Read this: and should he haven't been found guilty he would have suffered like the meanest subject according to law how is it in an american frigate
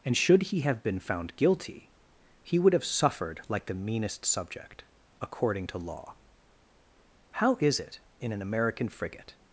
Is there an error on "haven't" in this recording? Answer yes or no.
yes